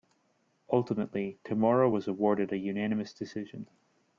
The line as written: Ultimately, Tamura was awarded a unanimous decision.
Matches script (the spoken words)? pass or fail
pass